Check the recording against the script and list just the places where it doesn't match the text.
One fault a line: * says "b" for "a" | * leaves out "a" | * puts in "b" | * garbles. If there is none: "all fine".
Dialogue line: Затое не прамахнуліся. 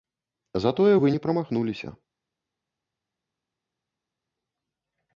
* puts in "вы"